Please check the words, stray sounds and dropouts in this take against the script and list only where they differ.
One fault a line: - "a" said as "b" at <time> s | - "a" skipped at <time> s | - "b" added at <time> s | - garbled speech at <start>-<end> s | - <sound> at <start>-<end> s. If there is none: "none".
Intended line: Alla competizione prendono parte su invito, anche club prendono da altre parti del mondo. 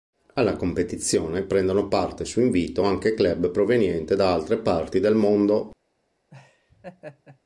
- "prendono" said as "provenienti" at 3.5 s
- laugh at 6.3-7.4 s